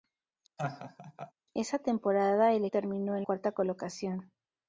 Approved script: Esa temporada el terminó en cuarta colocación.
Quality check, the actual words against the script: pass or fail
pass